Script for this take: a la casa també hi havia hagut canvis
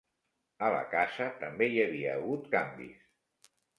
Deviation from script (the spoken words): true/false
false